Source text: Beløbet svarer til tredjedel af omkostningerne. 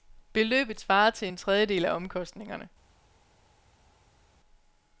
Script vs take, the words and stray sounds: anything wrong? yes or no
yes